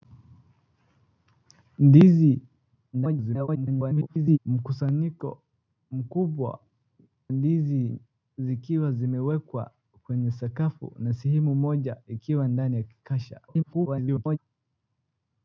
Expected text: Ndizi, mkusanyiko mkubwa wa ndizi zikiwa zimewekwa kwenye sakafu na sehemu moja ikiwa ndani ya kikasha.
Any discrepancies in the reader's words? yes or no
yes